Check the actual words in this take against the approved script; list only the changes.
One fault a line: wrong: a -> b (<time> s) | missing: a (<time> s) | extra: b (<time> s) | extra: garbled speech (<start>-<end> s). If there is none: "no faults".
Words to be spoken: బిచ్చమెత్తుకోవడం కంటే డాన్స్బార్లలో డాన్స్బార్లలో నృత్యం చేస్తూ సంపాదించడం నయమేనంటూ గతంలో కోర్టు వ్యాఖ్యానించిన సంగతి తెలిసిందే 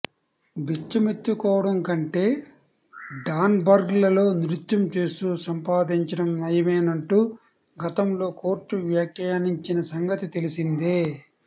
missing: డాన్స్బార్లలో (4.2 s)